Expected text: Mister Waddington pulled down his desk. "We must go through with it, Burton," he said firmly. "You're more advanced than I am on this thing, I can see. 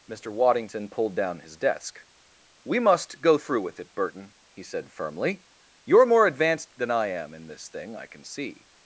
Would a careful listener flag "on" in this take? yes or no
yes